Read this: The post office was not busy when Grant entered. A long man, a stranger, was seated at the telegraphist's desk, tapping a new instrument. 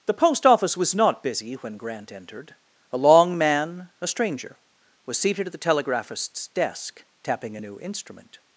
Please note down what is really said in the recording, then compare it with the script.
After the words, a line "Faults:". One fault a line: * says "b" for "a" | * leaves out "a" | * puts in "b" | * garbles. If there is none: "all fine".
The post office was not busy when Grant entered. A long man, a stranger, was seated at the telegraphist's desk, tapping a new instrument.
Faults:
all fine